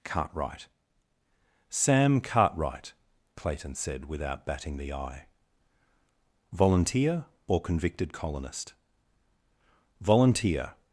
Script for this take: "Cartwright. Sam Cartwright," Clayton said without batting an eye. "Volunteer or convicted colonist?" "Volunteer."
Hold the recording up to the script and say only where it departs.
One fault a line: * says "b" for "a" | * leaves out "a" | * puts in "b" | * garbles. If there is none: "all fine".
* says "the" for "an"